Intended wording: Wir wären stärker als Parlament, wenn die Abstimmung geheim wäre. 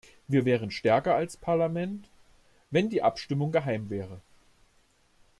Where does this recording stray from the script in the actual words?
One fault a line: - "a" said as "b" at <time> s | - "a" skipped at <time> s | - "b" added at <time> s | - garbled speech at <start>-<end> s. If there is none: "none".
none